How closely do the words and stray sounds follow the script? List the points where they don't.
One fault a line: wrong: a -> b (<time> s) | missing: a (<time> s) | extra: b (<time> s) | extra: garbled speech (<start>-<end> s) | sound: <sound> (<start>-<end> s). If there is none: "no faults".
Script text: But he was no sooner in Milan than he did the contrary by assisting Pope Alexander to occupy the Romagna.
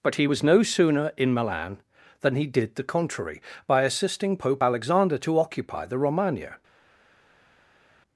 no faults